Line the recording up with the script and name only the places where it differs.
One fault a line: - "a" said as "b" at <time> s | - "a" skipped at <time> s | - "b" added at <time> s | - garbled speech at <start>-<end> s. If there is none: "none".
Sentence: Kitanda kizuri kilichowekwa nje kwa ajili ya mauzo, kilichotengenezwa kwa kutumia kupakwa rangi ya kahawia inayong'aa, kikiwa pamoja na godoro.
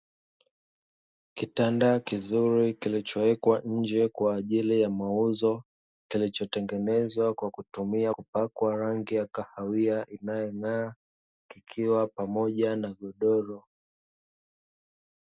none